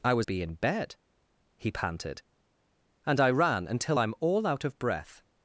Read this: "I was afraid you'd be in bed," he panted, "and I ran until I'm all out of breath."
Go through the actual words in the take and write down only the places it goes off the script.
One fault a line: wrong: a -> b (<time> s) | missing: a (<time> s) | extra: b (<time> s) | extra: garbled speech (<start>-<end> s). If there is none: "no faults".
missing: afraid you'd (0.3 s)